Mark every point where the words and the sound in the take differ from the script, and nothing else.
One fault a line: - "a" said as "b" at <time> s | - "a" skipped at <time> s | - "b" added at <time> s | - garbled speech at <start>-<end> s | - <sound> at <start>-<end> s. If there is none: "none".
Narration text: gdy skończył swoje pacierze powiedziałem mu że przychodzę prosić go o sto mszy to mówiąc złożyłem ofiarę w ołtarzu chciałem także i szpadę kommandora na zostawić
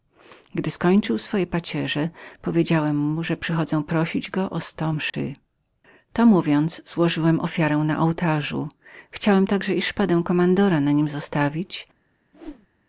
- dropout at 5.1-5.1 s
- "w" said as "na" at 7.8 s
- "nim" added at 10.9 s
- whoosh at 12.3-12.7 s